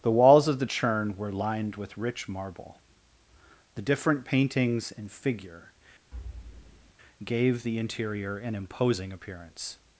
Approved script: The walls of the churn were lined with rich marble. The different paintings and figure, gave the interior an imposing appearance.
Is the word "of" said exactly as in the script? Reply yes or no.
yes